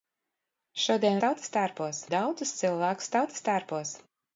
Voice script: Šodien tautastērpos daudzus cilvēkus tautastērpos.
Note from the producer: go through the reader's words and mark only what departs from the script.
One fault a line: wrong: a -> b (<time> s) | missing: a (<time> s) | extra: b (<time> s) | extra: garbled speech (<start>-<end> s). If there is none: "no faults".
no faults